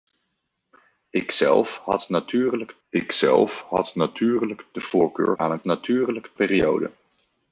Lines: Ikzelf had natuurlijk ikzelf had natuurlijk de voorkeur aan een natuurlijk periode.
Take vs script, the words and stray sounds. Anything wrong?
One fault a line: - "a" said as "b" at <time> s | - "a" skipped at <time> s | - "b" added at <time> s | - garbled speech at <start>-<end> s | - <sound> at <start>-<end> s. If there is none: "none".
none